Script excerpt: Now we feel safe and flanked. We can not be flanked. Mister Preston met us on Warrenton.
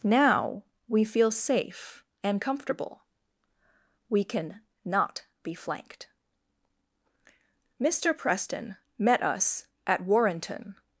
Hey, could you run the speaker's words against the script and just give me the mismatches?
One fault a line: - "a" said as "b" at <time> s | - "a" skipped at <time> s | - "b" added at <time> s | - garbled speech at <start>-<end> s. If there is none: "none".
- "flanked" said as "comfortable" at 2.4 s
- "on" said as "at" at 9.8 s